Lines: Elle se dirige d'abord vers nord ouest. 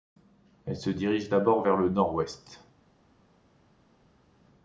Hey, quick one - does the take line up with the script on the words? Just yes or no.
no